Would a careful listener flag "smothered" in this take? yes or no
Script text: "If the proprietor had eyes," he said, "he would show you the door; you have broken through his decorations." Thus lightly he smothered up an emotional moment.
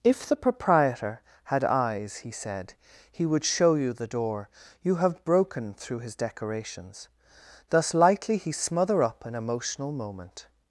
yes